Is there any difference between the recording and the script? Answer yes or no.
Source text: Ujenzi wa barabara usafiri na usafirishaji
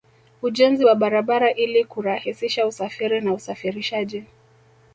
yes